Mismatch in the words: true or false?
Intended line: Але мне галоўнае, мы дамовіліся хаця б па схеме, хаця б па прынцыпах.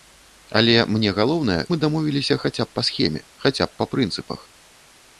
false